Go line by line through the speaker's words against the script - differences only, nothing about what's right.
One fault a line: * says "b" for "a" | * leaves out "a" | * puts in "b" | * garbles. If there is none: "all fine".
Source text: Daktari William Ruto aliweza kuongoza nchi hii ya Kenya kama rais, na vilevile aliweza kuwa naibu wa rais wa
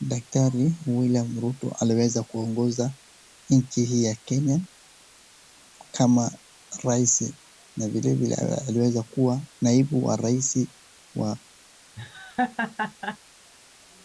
all fine